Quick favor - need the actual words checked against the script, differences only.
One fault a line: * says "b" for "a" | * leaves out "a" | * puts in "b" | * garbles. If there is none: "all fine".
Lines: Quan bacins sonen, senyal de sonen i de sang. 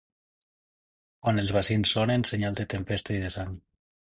* puts in "els"
* says "tempesta" for "sonen"